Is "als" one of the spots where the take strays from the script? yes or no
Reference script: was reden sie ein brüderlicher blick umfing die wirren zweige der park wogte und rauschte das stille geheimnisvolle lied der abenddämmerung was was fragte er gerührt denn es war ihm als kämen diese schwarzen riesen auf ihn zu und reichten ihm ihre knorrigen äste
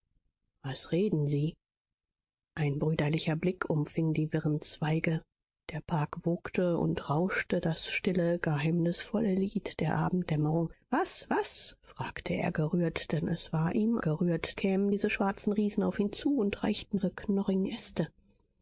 yes